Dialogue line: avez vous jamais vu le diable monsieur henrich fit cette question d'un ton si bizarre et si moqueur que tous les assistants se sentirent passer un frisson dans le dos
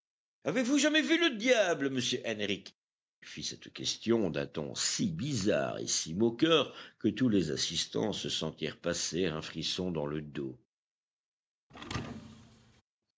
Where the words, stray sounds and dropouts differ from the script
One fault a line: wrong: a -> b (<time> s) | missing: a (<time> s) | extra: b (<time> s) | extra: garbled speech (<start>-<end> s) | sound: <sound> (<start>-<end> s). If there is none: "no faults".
sound: thud (11.7-12.8 s)